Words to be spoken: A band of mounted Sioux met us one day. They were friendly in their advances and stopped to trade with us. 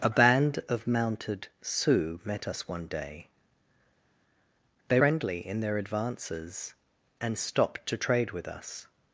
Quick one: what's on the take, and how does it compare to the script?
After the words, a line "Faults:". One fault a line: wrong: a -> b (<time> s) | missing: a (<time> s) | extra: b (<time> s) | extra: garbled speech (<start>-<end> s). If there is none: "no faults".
A band of mounted Sioux met us one day. They friendly in their advances and stopped to trade with us.
Faults:
missing: were (5.0 s)